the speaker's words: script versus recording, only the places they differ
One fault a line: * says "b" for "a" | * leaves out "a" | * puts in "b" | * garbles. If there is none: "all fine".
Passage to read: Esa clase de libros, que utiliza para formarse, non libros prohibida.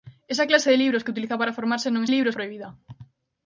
all fine